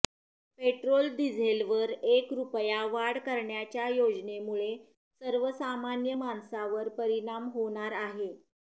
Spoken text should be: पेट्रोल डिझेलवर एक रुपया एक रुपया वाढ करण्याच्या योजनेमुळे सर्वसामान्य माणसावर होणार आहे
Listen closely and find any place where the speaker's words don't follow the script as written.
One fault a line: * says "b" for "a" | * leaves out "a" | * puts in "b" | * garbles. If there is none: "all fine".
* leaves out "एक रुपया"
* puts in "परिणाम"